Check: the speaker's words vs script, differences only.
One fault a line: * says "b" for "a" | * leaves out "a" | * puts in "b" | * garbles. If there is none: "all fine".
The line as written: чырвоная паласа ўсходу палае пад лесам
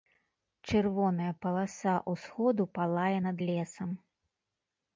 * says "над" for "пад"